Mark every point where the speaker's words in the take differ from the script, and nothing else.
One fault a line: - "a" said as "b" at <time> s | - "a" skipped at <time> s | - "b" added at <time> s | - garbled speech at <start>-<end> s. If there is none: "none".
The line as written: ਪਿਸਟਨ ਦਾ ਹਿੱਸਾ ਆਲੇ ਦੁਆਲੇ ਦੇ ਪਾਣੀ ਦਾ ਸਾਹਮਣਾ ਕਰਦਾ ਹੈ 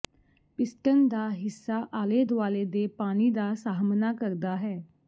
none